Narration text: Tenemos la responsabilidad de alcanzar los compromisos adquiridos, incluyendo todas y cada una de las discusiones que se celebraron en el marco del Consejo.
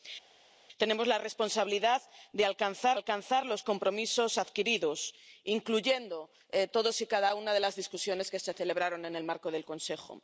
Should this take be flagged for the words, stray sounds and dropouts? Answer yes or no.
yes